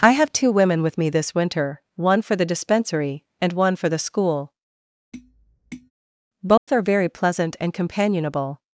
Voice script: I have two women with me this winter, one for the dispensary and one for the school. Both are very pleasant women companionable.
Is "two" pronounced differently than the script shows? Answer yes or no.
no